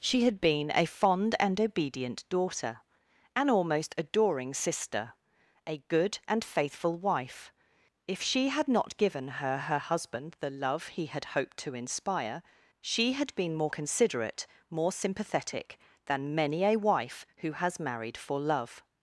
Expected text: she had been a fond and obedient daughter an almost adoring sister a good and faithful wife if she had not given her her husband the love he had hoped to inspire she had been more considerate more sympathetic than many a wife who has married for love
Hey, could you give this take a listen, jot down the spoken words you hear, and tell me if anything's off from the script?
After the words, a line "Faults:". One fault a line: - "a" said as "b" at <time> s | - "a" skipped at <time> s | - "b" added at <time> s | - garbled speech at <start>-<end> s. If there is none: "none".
she had been a fond and obedient daughter an almost adoring sister a good and faithful wife if she had not given her her husband the love he had hoped to inspire she had been more considerate more sympathetic than many a wife who has married for love
Faults:
none